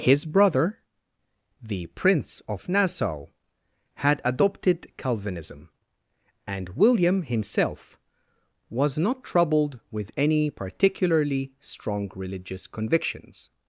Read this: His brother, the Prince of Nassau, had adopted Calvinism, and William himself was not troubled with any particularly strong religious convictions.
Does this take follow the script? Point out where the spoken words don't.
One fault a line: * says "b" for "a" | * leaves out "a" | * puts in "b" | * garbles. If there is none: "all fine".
all fine